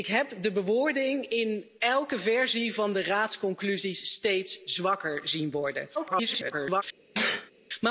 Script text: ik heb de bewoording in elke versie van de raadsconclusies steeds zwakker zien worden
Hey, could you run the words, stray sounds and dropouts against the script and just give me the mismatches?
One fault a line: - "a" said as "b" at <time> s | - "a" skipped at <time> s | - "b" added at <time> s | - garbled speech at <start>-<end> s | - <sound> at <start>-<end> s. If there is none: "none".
- garbled speech at 5.9-6.8 s
- sneeze at 7.1-7.5 s